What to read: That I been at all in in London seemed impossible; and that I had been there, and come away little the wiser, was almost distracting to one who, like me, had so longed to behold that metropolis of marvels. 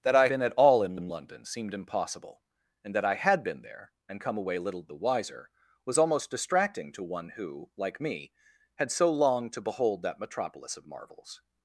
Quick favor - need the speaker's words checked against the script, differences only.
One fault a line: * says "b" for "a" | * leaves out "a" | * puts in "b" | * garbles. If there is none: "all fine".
all fine